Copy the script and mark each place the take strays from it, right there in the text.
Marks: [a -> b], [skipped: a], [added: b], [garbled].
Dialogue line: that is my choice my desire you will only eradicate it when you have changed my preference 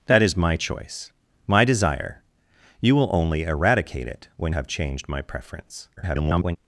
that is my choice my desire you will only eradicate it when [skipped: you] have changed my preference [garbled]